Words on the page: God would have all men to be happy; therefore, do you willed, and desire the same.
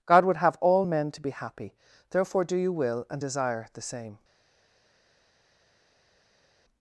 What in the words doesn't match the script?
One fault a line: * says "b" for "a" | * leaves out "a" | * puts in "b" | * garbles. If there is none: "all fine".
* says "will" for "willed"